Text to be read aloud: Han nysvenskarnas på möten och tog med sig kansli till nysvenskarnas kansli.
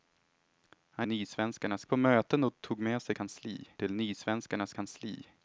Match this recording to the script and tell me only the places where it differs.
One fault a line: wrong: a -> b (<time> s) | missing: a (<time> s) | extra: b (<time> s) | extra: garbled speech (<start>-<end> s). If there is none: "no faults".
no faults